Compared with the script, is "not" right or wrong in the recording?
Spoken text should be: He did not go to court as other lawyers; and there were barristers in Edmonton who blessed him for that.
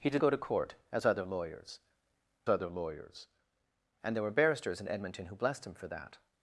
wrong